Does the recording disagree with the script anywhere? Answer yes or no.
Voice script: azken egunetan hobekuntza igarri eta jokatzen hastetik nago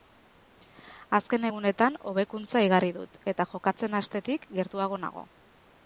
yes